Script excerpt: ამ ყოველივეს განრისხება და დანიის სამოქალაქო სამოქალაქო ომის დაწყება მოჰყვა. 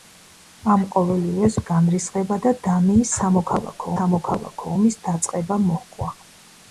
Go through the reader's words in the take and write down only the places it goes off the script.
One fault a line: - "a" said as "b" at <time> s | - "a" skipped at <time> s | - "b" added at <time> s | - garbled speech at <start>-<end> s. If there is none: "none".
none